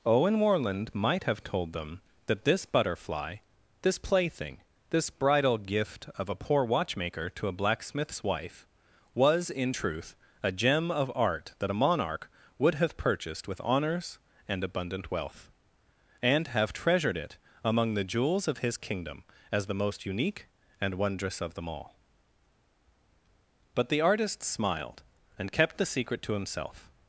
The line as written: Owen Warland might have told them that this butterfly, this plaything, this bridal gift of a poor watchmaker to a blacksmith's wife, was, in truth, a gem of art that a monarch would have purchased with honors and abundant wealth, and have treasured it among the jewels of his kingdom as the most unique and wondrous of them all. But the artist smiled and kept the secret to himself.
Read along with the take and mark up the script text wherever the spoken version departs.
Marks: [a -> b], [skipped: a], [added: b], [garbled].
Owen Warland might have told them that this butterfly, this plaything, this bridal gift of a poor watchmaker to a blacksmith's wife, was, in truth, a gem of art that a monarch would have purchased with honors and abundant wealth, and have treasured it among the jewels of his kingdom as the most unique and wondrous of them all. But the artist smiled and kept the secret to himself.